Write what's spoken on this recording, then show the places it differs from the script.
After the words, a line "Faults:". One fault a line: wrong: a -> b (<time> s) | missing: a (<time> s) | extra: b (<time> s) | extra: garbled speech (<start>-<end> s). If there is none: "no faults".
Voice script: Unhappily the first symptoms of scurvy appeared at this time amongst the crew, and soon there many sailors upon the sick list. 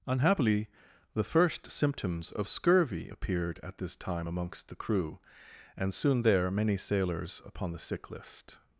Unhappily the first symptoms of scurvy appeared at this time amongst the crew, and soon there many sailors upon the sick list.
Faults:
no faults